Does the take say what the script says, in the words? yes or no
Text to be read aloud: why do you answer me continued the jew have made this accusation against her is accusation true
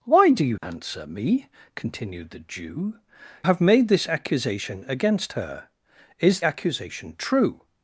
yes